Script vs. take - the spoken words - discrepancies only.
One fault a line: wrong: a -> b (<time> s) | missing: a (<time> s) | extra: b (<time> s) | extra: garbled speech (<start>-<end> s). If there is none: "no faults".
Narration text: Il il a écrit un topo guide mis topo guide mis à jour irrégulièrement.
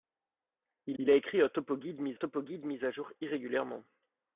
no faults